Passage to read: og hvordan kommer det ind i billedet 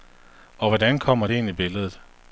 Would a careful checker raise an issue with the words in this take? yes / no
no